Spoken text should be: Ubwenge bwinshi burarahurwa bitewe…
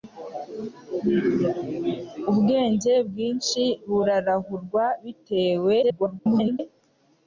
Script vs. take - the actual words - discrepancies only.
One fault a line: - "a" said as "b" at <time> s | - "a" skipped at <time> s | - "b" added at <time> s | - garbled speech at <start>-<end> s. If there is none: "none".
- garbled speech at 5.8-6.6 s